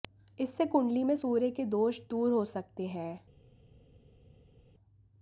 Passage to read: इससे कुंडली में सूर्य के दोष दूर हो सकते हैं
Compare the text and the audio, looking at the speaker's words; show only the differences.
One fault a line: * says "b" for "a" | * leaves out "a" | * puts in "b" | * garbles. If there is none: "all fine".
all fine